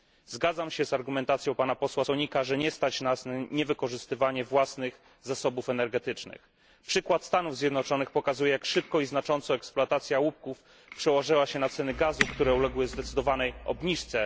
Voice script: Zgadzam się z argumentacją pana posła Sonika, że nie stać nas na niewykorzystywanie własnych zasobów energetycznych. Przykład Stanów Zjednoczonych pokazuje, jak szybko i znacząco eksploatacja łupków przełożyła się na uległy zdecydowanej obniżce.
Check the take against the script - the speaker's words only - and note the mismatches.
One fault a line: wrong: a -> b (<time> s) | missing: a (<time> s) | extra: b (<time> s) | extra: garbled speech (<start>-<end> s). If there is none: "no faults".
extra: ceny gazu które (11.7 s)